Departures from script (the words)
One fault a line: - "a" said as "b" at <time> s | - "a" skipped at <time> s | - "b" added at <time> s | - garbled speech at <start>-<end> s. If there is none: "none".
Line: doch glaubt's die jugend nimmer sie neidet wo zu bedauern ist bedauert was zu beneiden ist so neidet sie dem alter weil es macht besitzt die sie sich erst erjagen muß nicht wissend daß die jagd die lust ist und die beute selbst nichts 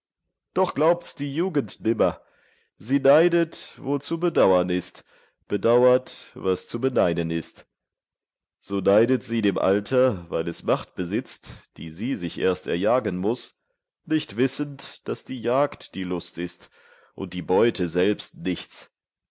none